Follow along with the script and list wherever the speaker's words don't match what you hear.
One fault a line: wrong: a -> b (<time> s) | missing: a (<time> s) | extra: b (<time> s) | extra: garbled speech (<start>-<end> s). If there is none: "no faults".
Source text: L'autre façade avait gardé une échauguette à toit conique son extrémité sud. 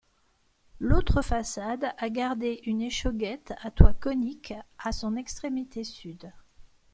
wrong: avait -> a (2.0 s)
extra: à (4.8 s)